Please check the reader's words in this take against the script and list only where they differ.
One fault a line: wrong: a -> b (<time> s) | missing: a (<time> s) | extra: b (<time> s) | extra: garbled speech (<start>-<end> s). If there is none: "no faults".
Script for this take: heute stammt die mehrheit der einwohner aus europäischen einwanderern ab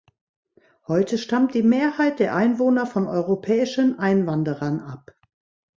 wrong: aus -> von (2.9 s)